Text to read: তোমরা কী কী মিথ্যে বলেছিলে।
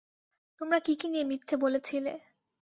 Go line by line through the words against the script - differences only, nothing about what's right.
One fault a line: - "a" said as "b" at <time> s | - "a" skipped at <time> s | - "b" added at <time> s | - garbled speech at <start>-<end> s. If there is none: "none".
- "নিয়ে" added at 1.1 s